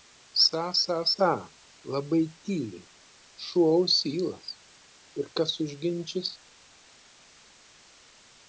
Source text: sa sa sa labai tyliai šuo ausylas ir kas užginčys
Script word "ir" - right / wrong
right